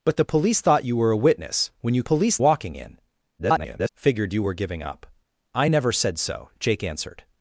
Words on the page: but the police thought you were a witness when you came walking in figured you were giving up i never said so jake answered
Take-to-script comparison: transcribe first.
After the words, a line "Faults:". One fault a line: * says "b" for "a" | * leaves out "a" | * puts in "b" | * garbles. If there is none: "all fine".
but the police thought you were a witness when you police walking in [garbled] figured you were giving up i never said so jake answered
Faults:
* says "police" for "came"
* garbles